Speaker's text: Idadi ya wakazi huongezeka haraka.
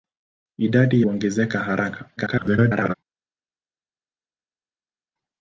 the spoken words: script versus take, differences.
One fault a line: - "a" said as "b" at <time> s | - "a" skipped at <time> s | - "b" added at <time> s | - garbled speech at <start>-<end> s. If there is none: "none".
- "ya wakazi" skipped at 1.0 s
- garbled speech at 2.2-2.9 s